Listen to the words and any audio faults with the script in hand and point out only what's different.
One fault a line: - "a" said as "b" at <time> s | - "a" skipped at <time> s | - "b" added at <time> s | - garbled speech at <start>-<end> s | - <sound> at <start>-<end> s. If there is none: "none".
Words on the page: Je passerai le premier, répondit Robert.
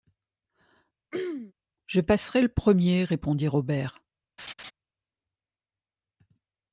- throat clearing at 1.1-1.5 s
- laugh at 4.4-4.7 s